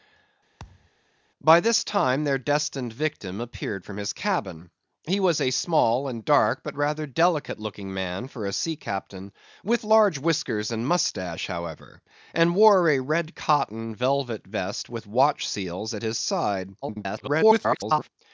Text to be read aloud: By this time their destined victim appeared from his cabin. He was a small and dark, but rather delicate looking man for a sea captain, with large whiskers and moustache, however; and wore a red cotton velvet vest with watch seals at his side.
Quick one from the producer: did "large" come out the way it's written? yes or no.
yes